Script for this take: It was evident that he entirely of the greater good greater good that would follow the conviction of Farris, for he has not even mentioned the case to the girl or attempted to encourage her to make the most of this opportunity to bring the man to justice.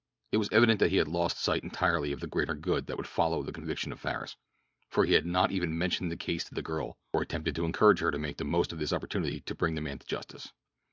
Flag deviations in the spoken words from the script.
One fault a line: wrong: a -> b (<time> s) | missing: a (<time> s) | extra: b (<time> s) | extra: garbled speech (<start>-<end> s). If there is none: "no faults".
extra: had lost sight (1.0 s)
missing: greater good (2.9 s)
wrong: has -> had (5.1 s)